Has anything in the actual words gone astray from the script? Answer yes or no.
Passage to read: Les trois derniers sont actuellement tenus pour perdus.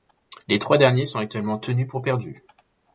no